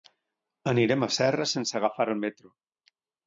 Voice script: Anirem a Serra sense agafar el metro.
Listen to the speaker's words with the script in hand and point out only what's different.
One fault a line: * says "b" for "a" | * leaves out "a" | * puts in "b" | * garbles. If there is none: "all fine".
all fine